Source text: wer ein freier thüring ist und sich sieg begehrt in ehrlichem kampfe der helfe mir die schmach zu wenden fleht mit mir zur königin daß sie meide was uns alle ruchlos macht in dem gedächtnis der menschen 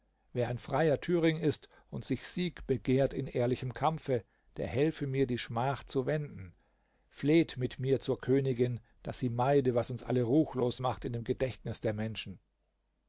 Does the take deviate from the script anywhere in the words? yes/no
no